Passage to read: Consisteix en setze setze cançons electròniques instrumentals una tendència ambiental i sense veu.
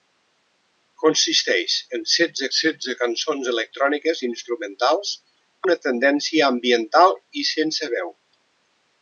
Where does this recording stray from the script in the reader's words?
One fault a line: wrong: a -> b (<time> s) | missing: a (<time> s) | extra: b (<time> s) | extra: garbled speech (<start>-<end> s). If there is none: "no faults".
no faults